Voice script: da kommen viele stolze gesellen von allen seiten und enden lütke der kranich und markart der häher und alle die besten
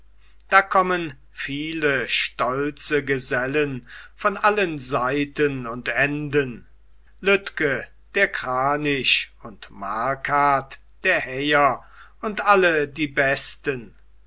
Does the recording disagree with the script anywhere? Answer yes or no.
no